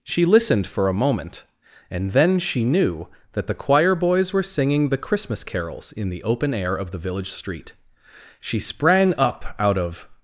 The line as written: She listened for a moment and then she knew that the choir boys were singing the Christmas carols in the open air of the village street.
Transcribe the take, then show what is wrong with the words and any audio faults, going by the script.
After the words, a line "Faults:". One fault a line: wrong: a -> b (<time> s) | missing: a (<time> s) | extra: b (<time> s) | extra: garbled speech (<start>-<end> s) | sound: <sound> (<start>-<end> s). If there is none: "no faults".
She listened for a moment and then she knew that the choir boys were singing the Christmas carols in the open air of the village street. She sprang up out of
Faults:
extra: She sprang up out of (8.4 s)